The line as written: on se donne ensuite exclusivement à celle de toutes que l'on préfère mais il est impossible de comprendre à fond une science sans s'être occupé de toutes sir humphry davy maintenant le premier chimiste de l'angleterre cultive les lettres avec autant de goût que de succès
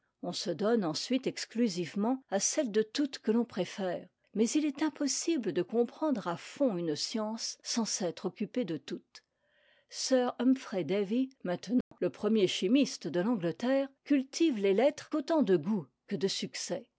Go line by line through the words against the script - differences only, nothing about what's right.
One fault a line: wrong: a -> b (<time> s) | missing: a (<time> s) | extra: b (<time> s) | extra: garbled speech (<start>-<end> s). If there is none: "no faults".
missing: avec (15.1 s)